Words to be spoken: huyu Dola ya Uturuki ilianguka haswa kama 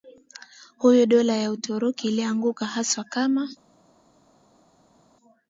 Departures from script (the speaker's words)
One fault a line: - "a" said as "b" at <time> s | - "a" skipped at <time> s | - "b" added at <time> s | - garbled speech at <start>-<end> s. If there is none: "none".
none